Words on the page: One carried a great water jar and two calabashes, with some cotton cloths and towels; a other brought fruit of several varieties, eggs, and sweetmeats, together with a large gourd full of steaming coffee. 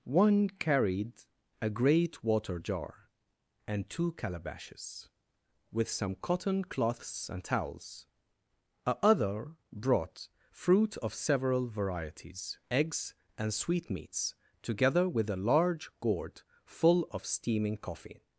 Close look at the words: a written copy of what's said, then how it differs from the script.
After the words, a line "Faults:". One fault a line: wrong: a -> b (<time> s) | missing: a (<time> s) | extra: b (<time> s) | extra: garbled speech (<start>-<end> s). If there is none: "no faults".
One carried a great water jar and two calabashes, with some cotton cloths and towels; a other brought fruit of several varieties, eggs, and sweetmeats, together with a large gourd full of steaming coffee.
Faults:
no faults